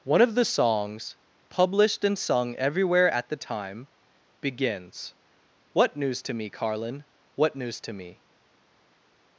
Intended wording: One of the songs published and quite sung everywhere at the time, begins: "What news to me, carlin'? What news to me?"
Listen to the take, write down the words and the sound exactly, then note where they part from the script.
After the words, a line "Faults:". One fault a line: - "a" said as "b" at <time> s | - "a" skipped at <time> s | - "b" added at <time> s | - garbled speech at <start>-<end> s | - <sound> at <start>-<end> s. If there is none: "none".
One of the songs published and sung everywhere at the time, begins: "What news to me, carlin'? What news to me?"
Faults:
- "quite" skipped at 2.2 s